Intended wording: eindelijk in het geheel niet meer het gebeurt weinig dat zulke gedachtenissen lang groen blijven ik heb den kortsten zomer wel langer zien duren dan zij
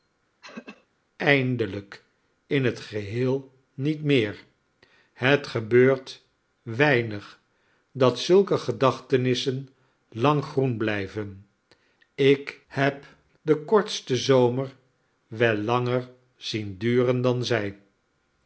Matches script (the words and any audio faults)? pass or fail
fail